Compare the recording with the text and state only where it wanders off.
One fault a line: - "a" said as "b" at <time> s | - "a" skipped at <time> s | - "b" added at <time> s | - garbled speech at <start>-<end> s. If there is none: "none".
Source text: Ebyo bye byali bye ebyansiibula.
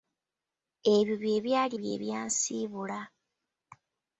none